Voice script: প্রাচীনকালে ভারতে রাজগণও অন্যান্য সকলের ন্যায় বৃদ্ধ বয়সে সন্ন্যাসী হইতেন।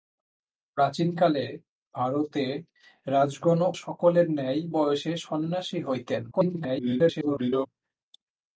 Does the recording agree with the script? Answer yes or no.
no